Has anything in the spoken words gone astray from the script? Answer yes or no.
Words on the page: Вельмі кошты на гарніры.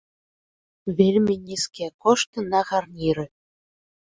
yes